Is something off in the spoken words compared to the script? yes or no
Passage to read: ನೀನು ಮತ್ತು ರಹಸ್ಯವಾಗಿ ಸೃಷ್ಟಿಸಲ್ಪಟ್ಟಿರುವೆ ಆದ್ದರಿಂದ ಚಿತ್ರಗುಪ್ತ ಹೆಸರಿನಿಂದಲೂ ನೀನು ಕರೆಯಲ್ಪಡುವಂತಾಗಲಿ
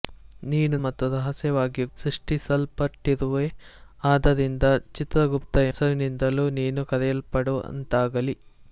no